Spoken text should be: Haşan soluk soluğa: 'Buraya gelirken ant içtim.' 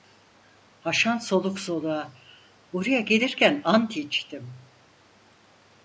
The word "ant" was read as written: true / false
true